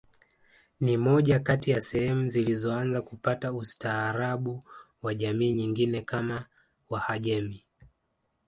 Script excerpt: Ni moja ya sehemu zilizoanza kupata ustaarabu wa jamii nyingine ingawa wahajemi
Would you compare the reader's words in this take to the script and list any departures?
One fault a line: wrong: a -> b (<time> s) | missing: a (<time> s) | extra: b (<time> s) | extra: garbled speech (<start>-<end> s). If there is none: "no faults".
extra: kati (1.4 s)
wrong: ingawa -> kama (6.0 s)